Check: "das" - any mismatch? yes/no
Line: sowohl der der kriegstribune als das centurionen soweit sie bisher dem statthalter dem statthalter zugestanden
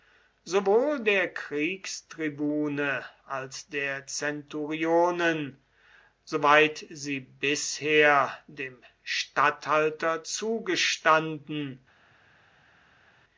yes